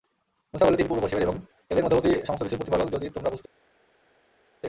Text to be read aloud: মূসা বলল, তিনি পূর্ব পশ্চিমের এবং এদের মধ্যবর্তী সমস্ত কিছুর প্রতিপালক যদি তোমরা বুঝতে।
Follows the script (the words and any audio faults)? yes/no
yes